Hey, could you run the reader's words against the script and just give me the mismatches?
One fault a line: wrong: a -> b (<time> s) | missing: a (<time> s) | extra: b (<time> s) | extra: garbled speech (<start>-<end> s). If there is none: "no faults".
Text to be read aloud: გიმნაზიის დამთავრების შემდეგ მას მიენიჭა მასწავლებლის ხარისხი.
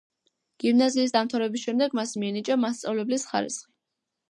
no faults